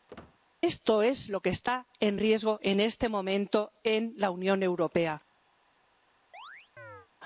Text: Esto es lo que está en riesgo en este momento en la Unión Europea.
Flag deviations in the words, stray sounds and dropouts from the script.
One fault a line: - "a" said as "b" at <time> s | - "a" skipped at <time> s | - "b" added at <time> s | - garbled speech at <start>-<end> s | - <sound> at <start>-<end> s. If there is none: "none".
- squeak at 0.1-0.4 s
- chirp at 6.3-7.1 s